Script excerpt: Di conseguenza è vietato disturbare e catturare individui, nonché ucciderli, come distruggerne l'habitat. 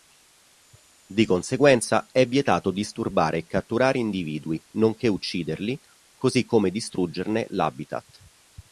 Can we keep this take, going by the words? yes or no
no